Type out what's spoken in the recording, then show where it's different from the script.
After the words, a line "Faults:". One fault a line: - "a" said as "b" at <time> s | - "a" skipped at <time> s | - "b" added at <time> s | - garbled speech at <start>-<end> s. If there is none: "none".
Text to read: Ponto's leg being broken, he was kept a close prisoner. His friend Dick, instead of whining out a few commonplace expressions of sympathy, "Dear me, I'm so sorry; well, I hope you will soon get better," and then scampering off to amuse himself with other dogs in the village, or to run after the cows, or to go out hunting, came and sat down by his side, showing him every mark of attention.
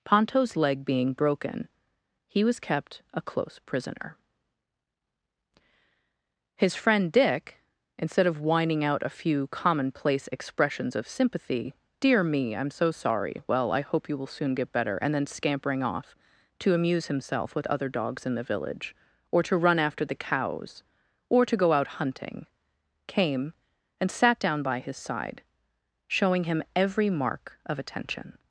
Ponto's leg being broken, he was kept a close prisoner. His friend Dick, instead of whining out a few commonplace expressions of sympathy, "Dear me, I'm so sorry; well, I hope you will soon get better," and then scampering off to amuse himself with other dogs in the village, or to run after the cows, or to go out hunting, came and sat down by his side, showing him every mark of attention.
Faults:
none